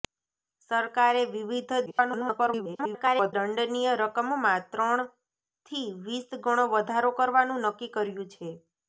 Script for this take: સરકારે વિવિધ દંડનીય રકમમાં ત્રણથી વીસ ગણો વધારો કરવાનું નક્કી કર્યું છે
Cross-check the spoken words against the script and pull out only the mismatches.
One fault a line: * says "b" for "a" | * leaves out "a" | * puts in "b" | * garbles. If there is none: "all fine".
* garbles